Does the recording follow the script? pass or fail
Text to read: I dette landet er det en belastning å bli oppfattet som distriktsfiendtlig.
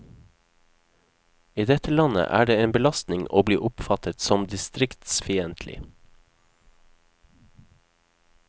pass